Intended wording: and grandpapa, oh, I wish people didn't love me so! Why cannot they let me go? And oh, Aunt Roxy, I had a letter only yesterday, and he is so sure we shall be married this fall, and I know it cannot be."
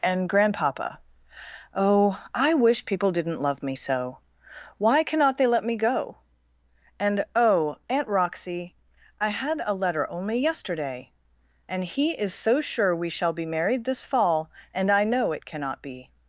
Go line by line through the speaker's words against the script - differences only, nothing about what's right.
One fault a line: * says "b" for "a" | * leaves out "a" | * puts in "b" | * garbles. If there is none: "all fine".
all fine